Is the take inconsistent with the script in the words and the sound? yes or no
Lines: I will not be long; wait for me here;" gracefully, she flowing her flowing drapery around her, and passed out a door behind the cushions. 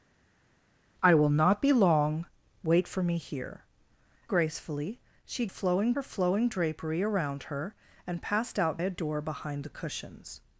no